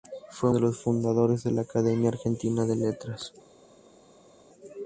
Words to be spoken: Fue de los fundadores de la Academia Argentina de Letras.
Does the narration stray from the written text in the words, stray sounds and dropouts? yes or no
no